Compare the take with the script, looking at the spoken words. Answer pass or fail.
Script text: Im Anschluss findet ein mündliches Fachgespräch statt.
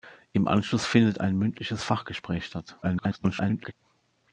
fail